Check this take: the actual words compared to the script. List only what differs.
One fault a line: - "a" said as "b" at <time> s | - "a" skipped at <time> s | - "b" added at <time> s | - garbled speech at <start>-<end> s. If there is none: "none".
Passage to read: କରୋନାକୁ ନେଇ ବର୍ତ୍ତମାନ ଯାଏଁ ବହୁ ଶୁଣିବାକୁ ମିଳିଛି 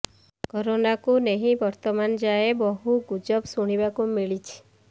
- "ଗୁଜବ" added at 3.1 s